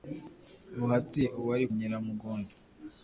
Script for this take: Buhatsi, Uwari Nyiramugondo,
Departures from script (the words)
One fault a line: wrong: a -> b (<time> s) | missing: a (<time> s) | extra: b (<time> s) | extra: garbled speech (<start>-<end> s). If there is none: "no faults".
no faults